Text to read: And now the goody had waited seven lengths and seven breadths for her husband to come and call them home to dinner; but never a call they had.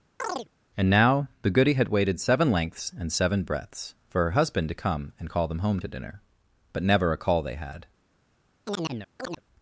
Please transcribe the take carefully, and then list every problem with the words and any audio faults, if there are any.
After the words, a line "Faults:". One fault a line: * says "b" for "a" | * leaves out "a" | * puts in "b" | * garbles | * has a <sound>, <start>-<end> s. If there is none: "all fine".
And now the goody had waited seven lengths and seven breadths for her husband to come and call them home to dinner; but never a call they had.
Faults:
* has a chirp, 0.2-0.5 s
* has a chirp, 8.7-9.4 s